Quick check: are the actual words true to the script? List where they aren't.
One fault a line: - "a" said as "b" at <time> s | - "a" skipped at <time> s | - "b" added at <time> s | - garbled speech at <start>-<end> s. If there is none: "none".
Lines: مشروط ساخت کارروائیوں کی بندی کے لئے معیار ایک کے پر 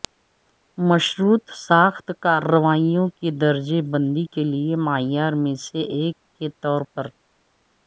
- "درجہ" added at 3.4 s
- "میں سے" added at 5.4 s
- "طور" added at 6.6 s